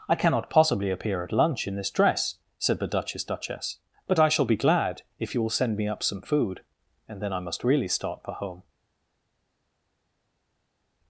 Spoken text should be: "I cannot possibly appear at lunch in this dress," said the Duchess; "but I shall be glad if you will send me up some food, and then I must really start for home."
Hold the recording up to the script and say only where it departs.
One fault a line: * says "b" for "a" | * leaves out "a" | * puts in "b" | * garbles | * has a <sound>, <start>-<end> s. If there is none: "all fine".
* puts in "Duchess"